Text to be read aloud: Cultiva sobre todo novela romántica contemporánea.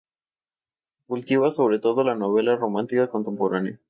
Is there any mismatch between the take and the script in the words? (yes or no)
yes